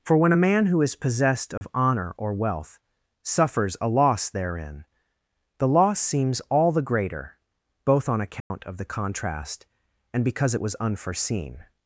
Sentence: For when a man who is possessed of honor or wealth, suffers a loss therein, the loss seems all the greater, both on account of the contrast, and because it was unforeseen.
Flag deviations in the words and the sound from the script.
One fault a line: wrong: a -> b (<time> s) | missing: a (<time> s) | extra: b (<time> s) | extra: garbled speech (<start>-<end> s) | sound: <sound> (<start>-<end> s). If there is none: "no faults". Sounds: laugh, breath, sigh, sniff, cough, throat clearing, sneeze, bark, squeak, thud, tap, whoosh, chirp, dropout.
sound: dropout (1.6-1.6 s)
sound: dropout (8.4-8.5 s)